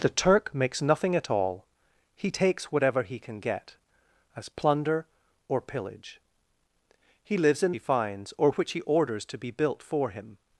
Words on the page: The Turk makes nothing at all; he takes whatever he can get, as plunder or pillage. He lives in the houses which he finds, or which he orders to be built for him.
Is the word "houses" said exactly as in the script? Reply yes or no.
no